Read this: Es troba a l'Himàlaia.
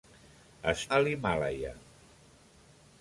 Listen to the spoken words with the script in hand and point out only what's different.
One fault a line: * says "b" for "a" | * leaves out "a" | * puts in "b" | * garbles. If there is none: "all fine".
* leaves out "troba"